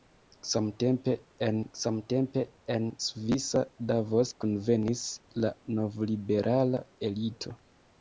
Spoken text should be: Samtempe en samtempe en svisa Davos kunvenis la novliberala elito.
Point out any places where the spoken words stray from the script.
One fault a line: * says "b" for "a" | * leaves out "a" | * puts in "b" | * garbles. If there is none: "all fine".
all fine